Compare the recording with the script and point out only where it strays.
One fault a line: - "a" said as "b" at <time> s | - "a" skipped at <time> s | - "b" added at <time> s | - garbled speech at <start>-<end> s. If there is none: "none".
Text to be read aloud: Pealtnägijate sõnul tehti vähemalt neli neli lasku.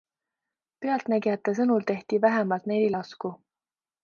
- "neli" skipped at 2.9 s